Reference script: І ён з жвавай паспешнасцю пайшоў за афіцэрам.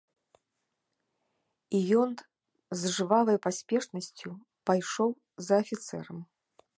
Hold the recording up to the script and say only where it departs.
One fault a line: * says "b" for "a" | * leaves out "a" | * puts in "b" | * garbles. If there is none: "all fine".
all fine